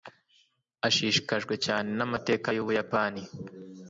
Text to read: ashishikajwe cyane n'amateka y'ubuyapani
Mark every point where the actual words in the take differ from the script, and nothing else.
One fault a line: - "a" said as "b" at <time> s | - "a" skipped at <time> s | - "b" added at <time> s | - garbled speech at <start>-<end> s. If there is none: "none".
none